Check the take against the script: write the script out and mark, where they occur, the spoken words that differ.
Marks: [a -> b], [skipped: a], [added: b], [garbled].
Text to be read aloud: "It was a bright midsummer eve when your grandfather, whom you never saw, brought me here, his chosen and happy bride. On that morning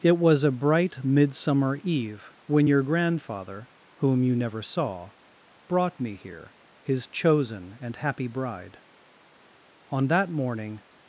"It was a bright midsummer eve when your grandfather, whom you never saw, brought me here, his chosen and happy bride. On that morning